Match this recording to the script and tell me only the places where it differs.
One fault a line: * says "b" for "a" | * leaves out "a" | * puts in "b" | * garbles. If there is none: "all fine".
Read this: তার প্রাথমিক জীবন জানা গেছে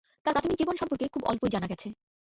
* puts in "সম্পর্কে খুব অল্পই"